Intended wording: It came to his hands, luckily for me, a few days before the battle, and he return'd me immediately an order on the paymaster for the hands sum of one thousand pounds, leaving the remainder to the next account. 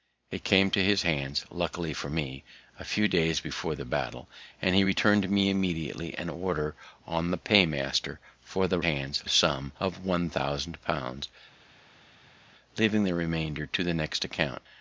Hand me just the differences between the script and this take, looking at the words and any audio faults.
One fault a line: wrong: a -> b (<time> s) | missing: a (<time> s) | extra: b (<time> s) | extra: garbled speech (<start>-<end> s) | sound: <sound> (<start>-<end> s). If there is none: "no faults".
no faults